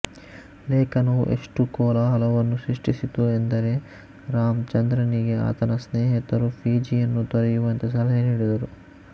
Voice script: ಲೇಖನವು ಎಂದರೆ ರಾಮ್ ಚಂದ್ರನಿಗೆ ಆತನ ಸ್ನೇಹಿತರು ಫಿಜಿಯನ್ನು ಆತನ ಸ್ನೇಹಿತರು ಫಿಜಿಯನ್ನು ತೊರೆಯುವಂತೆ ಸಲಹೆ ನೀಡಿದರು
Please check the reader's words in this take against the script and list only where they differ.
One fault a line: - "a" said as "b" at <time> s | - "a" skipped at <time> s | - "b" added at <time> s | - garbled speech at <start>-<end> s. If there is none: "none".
- "ಎಷ್ಟು ಕೋಲಾಹಲವನ್ನು ಸೃಷ್ಟಿಸಿತು" added at 1.3 s
- "ಆತನ ಸ್ನೇಹಿತರು ಫಿಜಿಯನ್ನು" skipped at 7.2 s